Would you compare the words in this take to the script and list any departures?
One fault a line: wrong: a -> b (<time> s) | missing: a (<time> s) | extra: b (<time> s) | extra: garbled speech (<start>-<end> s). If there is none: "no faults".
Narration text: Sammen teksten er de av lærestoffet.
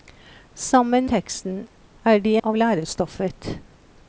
no faults